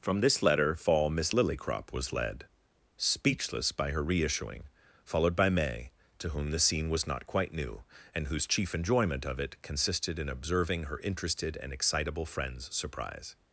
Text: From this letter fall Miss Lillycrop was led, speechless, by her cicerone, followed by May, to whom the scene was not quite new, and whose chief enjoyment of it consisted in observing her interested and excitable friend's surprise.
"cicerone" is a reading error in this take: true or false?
true